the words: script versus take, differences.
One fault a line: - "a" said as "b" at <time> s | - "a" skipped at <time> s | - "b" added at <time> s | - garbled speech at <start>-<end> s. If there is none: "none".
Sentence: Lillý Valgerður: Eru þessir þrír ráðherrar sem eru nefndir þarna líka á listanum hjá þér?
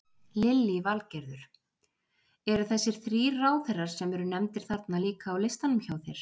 none